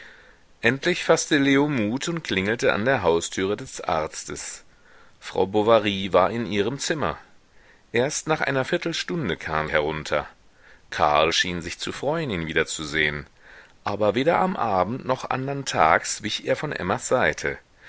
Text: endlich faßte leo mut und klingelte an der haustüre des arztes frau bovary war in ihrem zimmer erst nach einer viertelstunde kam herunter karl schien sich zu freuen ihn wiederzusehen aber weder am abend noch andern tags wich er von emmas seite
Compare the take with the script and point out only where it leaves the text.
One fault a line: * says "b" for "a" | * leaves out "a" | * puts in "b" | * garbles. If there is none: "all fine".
all fine